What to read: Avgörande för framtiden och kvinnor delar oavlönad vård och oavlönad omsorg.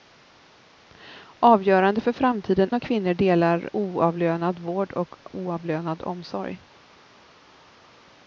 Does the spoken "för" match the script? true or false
true